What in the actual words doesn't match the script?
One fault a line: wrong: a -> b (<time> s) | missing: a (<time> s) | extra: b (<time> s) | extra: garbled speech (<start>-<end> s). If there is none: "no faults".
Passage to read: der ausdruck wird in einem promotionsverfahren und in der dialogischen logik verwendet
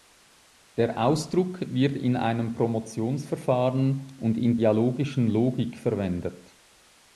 missing: der (4.6 s)